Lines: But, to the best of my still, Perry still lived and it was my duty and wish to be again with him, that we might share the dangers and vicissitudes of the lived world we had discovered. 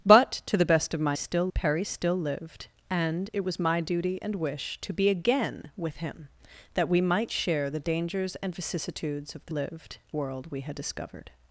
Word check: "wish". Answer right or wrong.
right